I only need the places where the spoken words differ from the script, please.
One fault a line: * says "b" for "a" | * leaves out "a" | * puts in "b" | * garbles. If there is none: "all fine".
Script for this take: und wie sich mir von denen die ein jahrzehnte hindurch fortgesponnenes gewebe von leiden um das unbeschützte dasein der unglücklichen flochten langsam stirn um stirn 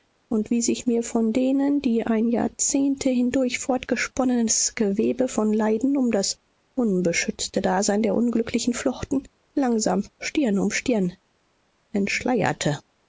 all fine